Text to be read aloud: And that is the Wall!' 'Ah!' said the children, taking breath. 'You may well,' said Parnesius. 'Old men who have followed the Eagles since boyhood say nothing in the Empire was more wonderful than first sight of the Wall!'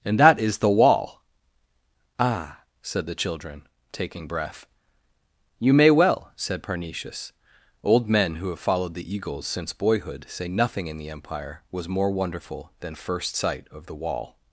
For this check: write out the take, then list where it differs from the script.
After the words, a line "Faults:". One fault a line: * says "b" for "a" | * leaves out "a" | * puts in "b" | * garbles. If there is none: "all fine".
And that is the Wall!' 'Ah!' said the children, taking breath. 'You may well,' said Parnesius. 'Old men who have followed the Eagles since boyhood say nothing in the Empire was more wonderful than first sight of the Wall!'
Faults:
all fine